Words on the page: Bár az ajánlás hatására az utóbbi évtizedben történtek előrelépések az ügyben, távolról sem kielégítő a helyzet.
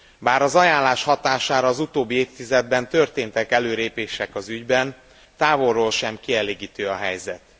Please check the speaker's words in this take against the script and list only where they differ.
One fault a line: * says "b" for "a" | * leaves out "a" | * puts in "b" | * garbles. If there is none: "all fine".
all fine